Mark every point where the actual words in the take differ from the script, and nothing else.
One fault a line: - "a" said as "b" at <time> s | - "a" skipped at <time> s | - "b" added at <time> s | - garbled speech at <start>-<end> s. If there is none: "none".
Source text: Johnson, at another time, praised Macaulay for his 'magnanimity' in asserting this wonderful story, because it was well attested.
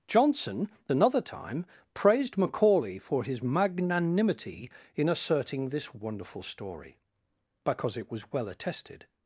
- "at" skipped at 0.7 s